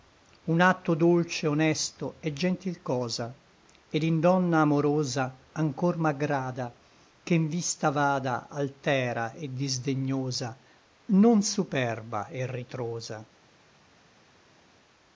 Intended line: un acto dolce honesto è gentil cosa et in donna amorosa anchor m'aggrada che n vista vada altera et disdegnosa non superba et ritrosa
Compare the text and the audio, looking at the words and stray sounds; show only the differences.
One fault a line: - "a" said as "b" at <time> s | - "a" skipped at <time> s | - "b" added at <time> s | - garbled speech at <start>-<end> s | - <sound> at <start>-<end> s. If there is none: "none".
none